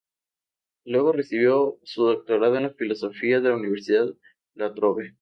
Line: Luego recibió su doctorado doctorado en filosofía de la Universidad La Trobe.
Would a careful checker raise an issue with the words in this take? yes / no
yes